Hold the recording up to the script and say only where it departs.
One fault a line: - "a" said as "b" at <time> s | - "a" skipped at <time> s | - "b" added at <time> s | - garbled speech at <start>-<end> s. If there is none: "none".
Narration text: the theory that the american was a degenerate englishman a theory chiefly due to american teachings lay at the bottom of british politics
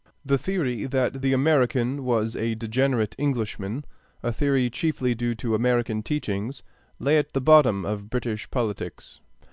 none